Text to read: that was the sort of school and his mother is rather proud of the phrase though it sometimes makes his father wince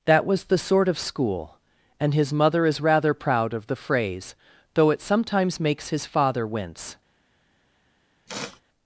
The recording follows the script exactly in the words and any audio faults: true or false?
false